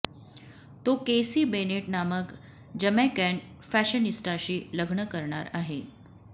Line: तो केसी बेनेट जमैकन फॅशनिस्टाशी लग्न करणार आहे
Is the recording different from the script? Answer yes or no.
yes